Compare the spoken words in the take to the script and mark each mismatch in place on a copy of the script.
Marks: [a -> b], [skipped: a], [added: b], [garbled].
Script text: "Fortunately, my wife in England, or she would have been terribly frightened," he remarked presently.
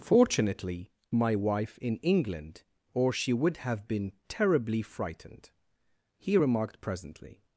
"Fortunately, my wife in England, or she would have been terribly frightened," he remarked presently.